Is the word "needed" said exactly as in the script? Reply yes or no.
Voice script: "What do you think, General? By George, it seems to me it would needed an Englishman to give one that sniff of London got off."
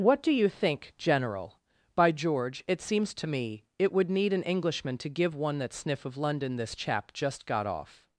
no